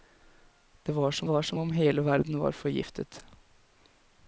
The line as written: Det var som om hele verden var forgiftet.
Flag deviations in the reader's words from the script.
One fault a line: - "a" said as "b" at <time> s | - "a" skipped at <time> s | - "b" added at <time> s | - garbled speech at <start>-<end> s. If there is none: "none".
- "var som" added at 1.2 s